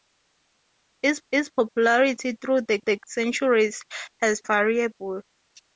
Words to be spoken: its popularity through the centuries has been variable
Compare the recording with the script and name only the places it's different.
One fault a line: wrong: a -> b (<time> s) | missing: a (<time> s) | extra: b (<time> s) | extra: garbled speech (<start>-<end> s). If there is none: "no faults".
extra: its (1.3 s)
extra: the (2.8 s)
missing: been (4.4 s)